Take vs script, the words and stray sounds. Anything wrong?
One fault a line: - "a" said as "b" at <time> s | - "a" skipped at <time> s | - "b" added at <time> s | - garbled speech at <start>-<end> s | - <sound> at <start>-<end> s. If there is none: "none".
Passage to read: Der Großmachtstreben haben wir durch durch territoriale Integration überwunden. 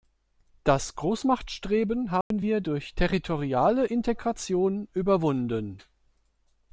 - "Der" said as "Das" at 0.6 s
- dropout at 2.2-2.3 s
- "durch" skipped at 2.9 s